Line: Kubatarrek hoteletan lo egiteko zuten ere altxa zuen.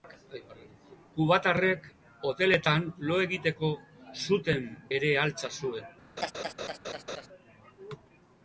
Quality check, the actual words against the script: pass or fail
pass